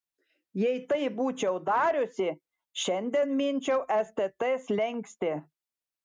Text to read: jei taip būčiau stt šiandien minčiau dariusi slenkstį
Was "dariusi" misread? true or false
true